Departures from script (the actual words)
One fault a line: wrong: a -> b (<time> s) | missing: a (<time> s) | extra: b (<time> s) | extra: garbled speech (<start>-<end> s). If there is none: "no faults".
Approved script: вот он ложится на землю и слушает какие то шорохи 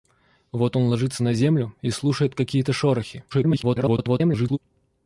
extra: garbled speech (3.3-4.6 s)